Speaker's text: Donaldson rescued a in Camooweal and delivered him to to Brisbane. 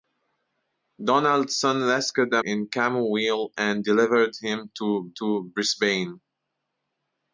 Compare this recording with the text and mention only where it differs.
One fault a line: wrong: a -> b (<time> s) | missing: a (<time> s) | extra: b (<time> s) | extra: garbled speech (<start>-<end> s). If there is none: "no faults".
no faults